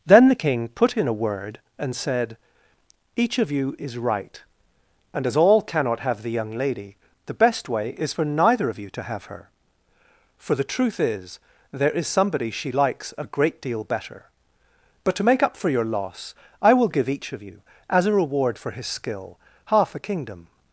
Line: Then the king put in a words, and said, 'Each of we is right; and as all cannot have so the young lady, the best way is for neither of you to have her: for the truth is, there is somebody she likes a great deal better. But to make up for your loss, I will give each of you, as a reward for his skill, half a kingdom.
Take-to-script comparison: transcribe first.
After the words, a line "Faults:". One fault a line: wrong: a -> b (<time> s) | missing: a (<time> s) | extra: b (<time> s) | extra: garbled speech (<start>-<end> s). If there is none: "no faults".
Then the king put in a word, and said, 'Each of you is right; and as all cannot have the young lady, the best way is for neither of you to have her: for the truth is, there is somebody she likes a great deal better. But to make up for your loss, I will give each of you, as a reward for his skill, half a kingdom.
Faults:
wrong: words -> word (1.1 s)
wrong: we -> you (3.5 s)
missing: so (6.2 s)